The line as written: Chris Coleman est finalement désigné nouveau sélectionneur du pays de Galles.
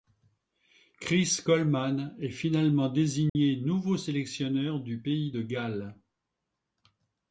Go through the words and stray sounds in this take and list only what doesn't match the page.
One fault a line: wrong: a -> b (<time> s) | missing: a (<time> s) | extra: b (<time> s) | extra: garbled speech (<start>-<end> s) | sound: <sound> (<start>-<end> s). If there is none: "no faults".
sound: dropout (3.3-3.4 s)